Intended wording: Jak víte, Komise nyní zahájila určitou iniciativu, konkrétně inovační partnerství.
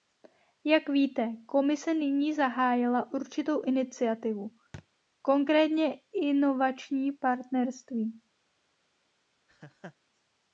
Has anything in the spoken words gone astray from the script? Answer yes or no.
no